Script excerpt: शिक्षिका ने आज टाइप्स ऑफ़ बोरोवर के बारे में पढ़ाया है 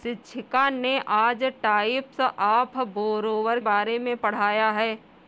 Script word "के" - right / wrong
wrong